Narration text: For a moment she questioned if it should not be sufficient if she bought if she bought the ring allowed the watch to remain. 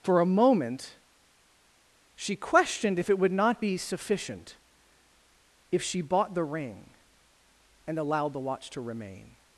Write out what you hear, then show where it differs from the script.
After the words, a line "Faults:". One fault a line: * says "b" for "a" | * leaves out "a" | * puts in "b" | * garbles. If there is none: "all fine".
For a moment she questioned if it would not be sufficient if she bought the ring and allowed the watch to remain.
Faults:
* says "would" for "should"
* leaves out "if she bought"
* puts in "and"